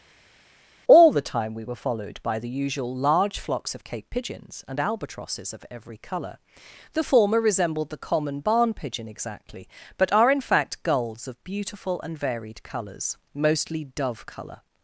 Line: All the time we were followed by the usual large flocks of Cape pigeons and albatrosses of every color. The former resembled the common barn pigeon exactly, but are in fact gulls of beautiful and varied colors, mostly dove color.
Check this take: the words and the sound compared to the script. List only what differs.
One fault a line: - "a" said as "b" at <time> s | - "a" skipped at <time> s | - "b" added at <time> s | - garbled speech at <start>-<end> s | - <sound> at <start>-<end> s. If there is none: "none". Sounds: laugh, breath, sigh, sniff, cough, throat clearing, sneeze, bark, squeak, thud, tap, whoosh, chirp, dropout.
none